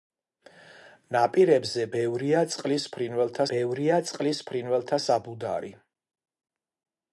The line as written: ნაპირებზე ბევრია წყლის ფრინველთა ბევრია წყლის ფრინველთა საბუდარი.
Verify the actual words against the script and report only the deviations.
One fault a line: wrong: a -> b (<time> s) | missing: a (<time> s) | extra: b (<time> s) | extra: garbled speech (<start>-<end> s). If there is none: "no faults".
no faults